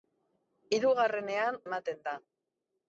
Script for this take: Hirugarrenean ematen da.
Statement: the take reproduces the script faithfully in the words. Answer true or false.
true